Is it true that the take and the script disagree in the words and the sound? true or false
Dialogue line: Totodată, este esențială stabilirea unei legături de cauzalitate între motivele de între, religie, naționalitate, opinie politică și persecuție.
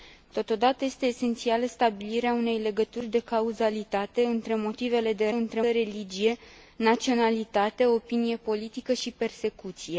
false